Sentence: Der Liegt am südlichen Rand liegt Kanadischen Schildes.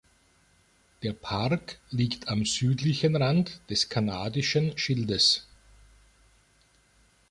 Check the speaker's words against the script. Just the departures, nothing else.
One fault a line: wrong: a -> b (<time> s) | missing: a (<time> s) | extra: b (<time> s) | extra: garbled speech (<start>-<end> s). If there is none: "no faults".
extra: Park (1.1 s)
wrong: liegt -> des (3.7 s)